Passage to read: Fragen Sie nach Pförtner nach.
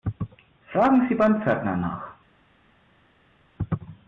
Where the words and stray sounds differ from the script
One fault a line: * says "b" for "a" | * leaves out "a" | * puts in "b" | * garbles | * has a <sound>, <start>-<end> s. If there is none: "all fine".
* says "beim" for "nach"